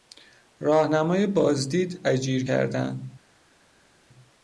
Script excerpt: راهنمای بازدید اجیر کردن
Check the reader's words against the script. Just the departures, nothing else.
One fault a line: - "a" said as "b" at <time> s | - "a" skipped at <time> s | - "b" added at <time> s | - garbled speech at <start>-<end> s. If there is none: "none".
none